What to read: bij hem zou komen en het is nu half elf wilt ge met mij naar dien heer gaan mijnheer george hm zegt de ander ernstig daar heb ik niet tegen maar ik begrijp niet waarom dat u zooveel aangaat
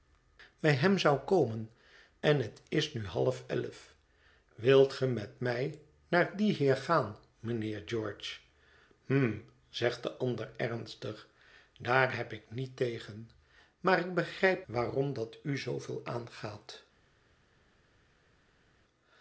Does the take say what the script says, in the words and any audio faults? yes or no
no